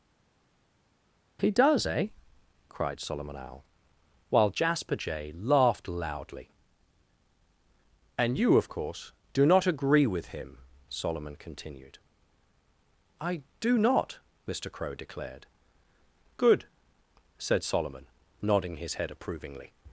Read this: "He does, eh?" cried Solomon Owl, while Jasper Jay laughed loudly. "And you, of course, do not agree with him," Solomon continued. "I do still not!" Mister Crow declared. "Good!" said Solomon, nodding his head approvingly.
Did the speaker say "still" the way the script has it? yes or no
no